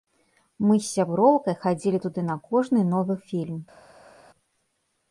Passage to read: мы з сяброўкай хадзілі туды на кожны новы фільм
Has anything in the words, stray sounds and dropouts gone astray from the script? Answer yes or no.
no